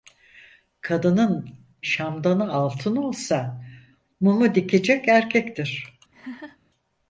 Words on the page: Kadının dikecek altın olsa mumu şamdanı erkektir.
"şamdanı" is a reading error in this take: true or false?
true